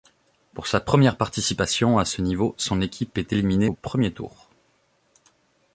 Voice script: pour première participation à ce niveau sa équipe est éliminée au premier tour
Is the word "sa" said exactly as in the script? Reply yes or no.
no